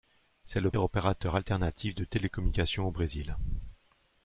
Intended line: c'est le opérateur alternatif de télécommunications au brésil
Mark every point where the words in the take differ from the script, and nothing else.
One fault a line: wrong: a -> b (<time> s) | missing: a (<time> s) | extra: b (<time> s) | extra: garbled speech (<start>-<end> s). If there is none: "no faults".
no faults